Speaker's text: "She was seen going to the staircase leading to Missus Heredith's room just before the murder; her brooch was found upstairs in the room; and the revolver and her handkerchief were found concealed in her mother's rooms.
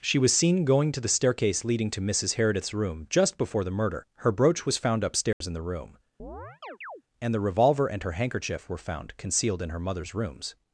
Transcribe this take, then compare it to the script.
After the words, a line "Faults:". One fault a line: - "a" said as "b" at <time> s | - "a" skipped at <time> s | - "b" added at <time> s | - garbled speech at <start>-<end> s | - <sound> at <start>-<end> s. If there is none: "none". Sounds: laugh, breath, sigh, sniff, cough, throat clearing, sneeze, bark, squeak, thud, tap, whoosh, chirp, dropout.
"She was seen going to the staircase leading to Missus Heredith's room just before the murder; her brooch was found upstairs in the room; and the revolver and her handkerchief were found concealed in her mother's rooms.
Faults:
- dropout at 5.3-5.4 s
- chirp at 6.2-7.0 s